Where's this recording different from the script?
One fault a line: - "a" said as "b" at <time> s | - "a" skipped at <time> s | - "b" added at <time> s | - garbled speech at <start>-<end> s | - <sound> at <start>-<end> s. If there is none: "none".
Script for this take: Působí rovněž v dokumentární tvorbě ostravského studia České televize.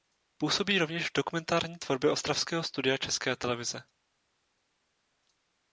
none